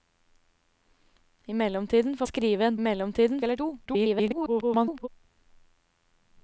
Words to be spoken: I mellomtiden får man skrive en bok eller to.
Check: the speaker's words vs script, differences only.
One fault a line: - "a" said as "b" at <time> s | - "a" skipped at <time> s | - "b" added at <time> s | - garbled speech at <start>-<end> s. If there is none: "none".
- "man" skipped at 2.2 s
- "bok" said as "mellomtiden" at 2.8 s
- garbled speech at 3.9-5.1 s